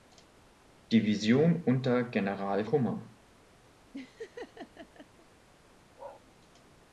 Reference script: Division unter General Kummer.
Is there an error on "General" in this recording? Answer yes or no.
no